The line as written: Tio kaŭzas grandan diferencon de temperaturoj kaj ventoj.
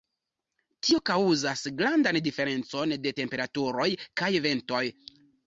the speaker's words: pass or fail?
pass